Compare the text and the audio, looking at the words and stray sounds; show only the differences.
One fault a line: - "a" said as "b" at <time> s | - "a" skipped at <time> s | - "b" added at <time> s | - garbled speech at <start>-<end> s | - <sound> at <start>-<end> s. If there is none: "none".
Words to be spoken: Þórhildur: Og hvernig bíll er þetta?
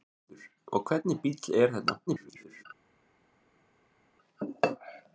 - garbled speech at 2.1-2.6 s